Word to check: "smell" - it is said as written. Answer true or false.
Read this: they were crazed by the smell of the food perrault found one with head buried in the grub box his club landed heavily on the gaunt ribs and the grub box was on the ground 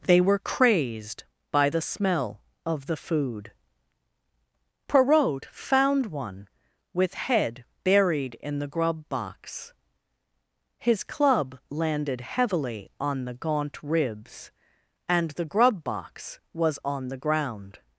true